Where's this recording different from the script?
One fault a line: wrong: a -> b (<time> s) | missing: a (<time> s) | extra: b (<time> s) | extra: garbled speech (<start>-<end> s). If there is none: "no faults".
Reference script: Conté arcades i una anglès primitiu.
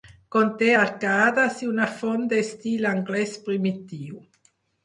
extra: font d'estil (2.0 s)